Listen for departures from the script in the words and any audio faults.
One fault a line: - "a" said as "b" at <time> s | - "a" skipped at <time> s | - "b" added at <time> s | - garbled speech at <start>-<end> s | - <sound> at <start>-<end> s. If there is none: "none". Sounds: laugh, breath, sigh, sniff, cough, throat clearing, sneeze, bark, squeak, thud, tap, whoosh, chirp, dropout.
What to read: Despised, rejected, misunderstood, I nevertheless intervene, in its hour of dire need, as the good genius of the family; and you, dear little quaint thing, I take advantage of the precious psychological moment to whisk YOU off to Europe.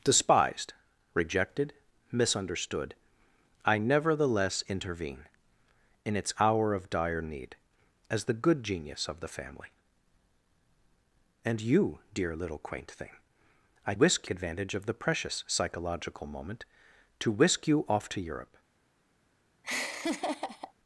- "take" said as "whisk" at 13.9 s
- laugh at 19.6-20.7 s